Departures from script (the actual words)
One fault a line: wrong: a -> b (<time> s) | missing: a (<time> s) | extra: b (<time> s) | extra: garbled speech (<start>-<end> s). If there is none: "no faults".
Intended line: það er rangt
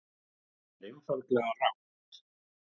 extra: einfaldlega (0.9 s)